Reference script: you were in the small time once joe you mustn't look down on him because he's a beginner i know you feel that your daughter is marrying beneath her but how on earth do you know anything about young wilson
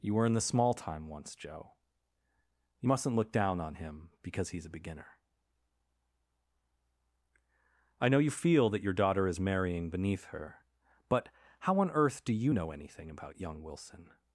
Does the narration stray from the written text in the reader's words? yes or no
no